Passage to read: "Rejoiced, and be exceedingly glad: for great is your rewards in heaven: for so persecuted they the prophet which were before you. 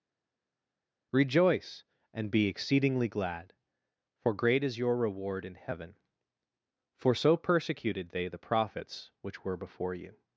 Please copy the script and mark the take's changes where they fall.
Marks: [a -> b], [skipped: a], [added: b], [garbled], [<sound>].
["Rejoiced, -> Rejoice] and be exceedingly glad: for great is your [rewards -> reward] in heaven: for so persecuted they the [prophet -> prophets] which were before you.